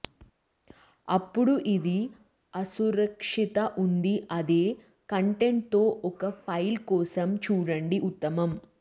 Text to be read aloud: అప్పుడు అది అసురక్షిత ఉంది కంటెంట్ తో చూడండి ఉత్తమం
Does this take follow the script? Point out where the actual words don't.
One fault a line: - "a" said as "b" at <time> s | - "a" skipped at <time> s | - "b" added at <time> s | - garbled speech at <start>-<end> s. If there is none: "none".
- "అది" said as "ఇది" at 1.7 s
- "అదే" added at 4.3 s
- "ఒక ఫైల్ కోసం" added at 6.1 s